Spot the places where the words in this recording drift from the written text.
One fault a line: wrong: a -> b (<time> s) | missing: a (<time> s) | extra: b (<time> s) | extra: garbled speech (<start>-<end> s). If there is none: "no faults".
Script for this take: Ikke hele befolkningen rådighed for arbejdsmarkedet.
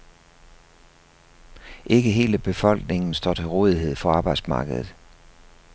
extra: står til (3.1 s)